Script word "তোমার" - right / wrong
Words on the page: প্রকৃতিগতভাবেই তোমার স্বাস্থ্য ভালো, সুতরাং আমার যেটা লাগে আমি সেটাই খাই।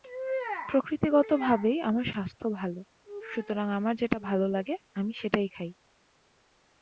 wrong